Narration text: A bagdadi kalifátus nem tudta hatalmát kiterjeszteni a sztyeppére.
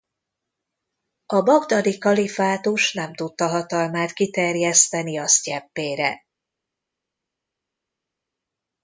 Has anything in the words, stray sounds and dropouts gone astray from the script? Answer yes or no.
no